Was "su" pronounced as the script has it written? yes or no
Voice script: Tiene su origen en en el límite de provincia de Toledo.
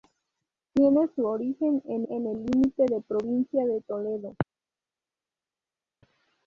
yes